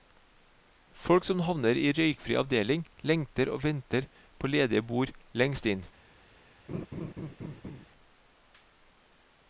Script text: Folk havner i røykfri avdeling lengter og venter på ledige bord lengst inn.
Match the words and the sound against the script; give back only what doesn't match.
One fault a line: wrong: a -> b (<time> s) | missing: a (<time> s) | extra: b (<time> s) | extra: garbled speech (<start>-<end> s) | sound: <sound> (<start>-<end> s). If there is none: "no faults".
extra: som (1.3 s)
sound: laugh (6.7-7.9 s)